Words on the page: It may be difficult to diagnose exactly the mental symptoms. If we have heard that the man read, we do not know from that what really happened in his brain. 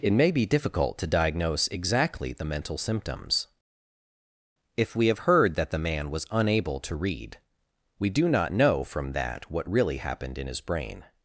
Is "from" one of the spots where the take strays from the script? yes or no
no